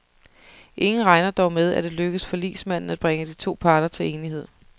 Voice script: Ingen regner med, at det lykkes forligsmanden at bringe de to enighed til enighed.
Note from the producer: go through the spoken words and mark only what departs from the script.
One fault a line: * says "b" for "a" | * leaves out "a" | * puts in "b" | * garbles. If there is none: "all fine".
* puts in "dog"
* says "parter" for "enighed"